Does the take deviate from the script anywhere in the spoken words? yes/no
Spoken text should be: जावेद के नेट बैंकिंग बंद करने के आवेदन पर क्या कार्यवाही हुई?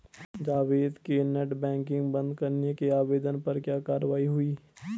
no